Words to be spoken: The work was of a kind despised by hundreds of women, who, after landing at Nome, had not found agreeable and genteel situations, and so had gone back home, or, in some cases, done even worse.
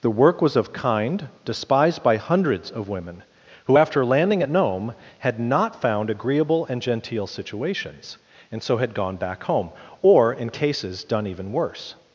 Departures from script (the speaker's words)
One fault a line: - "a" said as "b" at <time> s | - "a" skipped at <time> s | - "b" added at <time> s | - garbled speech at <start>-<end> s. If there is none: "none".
- "a" skipped at 0.7 s
- "some" skipped at 10.5 s